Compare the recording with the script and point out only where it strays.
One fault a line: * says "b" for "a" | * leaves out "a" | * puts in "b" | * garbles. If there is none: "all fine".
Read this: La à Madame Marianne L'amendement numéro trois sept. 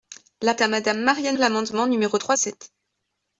all fine